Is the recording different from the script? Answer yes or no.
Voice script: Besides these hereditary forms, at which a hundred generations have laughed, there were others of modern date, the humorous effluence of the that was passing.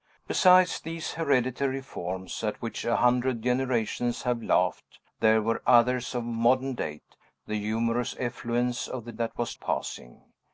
no